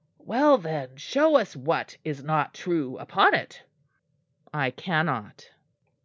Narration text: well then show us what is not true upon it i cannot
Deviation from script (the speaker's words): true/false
false